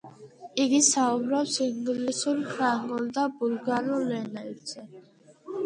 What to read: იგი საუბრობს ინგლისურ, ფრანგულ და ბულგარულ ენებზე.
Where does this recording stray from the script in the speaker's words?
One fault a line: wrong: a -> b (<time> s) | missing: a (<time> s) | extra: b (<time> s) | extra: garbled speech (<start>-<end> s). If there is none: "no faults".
no faults